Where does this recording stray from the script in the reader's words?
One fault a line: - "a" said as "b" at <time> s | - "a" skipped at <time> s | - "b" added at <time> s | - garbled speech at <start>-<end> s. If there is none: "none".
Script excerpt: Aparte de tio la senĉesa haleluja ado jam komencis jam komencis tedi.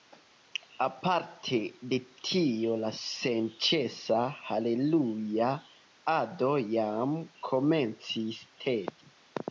- "jam komencis" skipped at 8.4 s